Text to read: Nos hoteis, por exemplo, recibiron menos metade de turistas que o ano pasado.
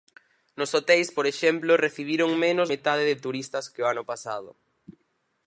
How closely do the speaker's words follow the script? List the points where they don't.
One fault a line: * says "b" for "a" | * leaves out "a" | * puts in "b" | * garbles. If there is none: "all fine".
all fine